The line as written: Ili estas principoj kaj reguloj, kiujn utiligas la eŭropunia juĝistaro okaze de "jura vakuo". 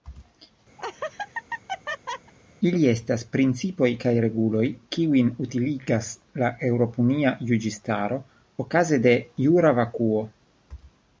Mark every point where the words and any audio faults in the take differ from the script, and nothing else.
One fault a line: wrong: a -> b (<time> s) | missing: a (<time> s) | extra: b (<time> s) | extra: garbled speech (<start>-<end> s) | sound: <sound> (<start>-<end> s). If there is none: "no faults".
sound: laugh (0.8-2.3 s)